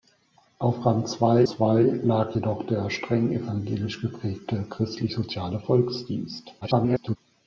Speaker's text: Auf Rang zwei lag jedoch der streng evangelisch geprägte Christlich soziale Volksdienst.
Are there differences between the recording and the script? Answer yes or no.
yes